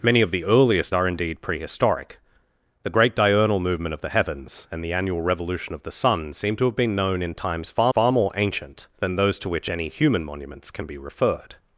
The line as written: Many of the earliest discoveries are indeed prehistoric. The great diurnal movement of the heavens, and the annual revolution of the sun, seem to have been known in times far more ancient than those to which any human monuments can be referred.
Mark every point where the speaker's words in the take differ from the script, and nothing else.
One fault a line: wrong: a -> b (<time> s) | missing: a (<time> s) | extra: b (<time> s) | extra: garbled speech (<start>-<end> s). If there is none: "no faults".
missing: discoveries (0.9 s)
extra: far (7.9 s)